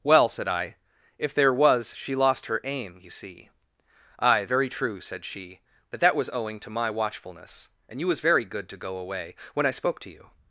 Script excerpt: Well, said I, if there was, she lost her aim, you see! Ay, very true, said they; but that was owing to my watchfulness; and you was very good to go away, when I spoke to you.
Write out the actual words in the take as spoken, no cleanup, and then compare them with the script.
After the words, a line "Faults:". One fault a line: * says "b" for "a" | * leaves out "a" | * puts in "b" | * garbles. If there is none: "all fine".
Well, said I, if there was, she lost her aim, you see! Ay, very true, said she; but that was owing to my watchfulness; and you was very good to go away, when I spoke to you.
Faults:
* says "she" for "they"